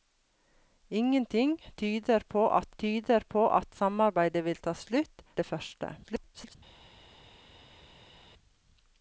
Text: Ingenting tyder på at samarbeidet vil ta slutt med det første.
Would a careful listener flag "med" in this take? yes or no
yes